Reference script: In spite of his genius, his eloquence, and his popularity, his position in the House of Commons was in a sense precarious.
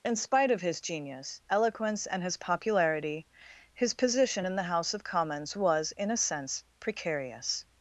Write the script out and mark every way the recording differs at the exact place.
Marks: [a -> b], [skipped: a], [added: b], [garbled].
In spite of his genius, [skipped: his] eloquence, and his popularity, his position in the House of Commons was in a sense precarious.